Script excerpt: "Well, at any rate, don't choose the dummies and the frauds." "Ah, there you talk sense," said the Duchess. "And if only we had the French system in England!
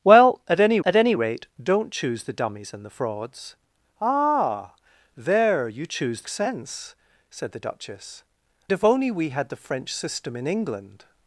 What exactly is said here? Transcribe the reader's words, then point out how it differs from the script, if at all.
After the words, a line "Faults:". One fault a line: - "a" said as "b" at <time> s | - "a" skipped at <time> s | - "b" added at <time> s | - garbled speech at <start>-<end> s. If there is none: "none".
"Well, at any at any rate, don't choose the dummies and the frauds." "Ah, there you choose sense," said the Duchess. "If only we had the French system in England!
Faults:
- "at any" added at 0.8 s
- "talk" said as "choose" at 5.9 s
- "And" skipped at 8.2 s